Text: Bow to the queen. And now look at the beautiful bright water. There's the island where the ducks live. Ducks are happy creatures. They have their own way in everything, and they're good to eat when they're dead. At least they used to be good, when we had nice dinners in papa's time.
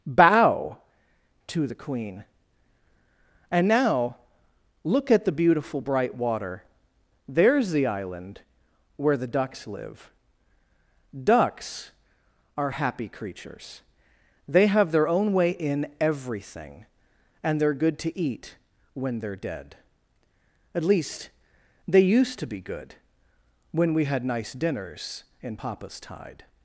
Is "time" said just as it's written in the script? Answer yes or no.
no